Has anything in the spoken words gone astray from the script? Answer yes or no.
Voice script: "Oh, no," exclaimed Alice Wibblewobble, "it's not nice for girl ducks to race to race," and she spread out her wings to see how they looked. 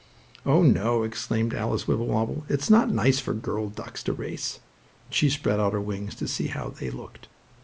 yes